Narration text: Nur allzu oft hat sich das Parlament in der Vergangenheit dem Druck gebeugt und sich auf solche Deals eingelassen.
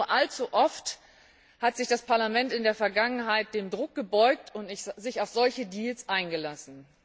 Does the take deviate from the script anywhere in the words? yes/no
no